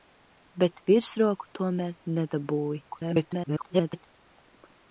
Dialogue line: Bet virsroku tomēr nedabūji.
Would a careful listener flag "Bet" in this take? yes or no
no